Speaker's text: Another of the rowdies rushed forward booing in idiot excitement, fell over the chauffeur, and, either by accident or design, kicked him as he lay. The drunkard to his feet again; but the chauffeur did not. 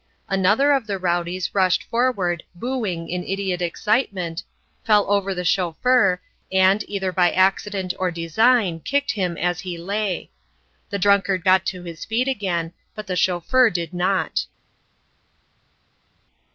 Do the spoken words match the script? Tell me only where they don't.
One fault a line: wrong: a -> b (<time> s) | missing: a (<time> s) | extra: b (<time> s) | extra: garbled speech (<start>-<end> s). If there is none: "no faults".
extra: got (11.4 s)